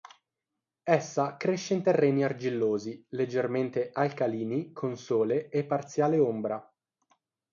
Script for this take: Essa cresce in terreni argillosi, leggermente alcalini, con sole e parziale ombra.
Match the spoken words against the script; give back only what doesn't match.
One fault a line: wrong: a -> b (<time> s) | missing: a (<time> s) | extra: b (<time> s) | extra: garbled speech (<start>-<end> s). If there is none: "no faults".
no faults